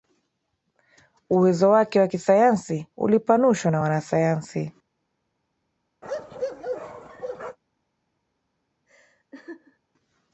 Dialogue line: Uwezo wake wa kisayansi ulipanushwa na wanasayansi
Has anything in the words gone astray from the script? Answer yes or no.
no